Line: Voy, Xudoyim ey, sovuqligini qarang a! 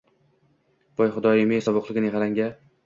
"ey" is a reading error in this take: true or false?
false